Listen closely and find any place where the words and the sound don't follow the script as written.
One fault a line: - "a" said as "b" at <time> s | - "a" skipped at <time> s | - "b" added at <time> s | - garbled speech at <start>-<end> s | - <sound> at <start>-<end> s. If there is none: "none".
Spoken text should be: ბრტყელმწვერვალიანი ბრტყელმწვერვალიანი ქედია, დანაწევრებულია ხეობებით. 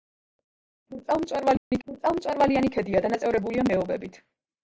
- dropout at 1.6-1.7 s